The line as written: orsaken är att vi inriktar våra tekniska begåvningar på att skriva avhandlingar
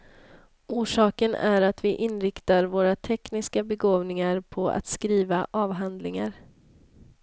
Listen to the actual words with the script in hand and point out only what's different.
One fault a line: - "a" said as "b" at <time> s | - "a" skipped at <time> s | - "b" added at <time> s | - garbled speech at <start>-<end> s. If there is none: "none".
none